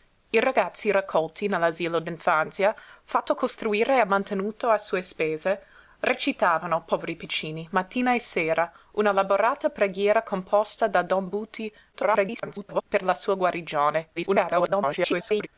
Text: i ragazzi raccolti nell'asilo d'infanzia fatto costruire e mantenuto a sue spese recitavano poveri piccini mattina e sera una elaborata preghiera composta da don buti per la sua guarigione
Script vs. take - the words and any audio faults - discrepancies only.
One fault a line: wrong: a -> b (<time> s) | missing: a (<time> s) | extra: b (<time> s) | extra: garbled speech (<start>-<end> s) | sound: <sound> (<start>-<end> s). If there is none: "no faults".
extra: garbled speech (11.9-12.8 s)
extra: garbled speech (14.2-15.5 s)